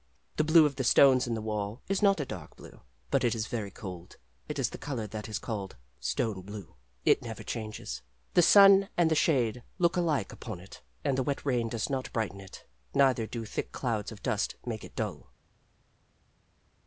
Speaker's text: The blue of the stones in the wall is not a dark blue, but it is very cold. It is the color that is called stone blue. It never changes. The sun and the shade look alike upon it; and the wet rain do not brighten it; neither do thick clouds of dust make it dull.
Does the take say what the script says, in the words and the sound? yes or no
no